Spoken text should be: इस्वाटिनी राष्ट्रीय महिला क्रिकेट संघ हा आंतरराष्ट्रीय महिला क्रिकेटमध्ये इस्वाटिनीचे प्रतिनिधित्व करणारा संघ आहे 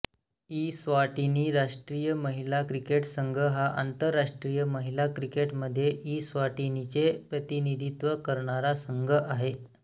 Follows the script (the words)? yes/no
yes